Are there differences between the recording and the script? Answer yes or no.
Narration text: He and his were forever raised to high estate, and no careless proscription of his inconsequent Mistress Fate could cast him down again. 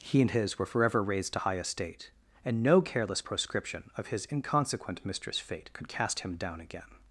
no